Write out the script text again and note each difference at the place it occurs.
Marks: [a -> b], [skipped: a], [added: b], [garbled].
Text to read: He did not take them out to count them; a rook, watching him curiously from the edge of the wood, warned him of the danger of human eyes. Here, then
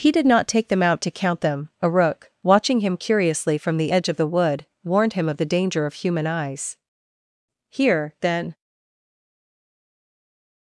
He did not take them out to count them; a rook, watching him curiously from the edge of the wood, warned him of the danger of human eyes. Here, then